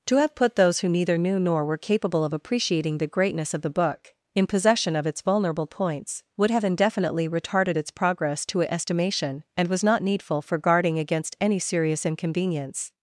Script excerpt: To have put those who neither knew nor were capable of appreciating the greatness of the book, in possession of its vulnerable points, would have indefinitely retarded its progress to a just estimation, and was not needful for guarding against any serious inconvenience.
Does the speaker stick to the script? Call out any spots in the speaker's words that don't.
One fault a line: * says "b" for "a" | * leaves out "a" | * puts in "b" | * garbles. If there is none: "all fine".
* leaves out "just"